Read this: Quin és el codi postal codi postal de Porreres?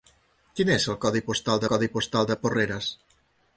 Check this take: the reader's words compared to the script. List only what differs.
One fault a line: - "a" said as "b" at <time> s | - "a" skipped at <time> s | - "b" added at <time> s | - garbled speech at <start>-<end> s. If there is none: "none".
none